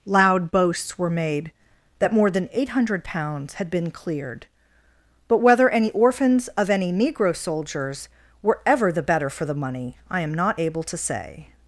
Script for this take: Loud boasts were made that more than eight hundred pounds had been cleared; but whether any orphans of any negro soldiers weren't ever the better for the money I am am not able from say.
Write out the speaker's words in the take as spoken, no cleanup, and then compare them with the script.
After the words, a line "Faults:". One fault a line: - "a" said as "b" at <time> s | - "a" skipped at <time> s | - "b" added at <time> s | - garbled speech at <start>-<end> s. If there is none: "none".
Loud boasts were made that more than eight hundred pounds had been cleared; but whether any orphans of any negro soldiers were ever the better for the money I am not able to say.
Faults:
- "weren't" said as "were" at 8.4 s
- "am" skipped at 10.3 s
- "from" said as "to" at 10.8 s